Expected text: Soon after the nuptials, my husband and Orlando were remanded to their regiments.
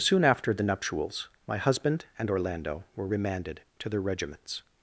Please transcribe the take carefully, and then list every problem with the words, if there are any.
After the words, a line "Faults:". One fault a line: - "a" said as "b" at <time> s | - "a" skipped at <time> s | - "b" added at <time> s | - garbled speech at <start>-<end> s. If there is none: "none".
Soon after the nuptials, my husband and Orlando were remanded to their regiments.
Faults:
none